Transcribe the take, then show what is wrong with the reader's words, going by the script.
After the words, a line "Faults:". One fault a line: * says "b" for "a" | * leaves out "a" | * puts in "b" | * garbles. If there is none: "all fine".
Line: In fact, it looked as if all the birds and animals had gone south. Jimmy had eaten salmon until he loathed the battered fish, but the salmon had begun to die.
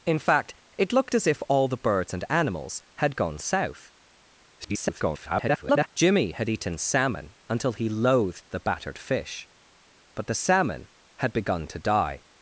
In fact, it looked as if all the birds and animals had gone south. [garbled] Jimmy had eaten salmon until he loathed the battered fish, but the salmon had begun to die.
Faults:
* garbles